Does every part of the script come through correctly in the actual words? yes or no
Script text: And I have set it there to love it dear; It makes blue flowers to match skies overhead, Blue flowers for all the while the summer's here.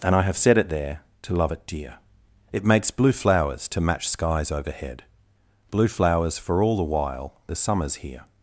yes